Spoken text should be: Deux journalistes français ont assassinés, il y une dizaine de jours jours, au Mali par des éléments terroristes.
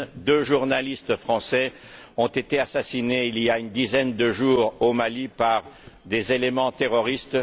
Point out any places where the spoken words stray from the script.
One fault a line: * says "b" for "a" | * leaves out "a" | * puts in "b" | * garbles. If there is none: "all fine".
* puts in "été"
* puts in "a"
* leaves out "jours"